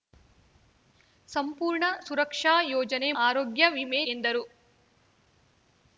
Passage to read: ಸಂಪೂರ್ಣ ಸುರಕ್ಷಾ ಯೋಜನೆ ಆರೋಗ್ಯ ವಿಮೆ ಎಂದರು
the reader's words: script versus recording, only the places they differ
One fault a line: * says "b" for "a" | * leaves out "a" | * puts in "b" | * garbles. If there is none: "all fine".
all fine